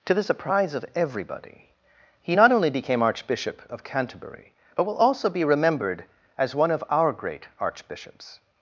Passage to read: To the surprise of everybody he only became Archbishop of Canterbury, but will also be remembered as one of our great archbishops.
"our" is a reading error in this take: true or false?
false